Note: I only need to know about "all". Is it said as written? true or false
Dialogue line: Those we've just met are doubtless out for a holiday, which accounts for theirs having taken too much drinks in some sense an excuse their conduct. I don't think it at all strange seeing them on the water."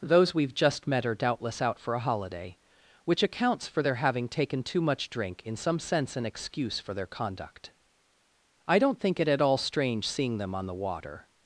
true